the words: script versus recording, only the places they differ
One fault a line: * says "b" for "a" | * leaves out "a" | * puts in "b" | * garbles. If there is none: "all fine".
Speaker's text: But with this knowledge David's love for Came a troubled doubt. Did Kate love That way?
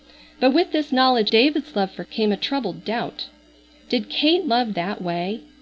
all fine